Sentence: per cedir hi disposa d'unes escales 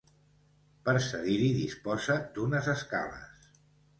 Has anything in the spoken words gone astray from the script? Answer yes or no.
no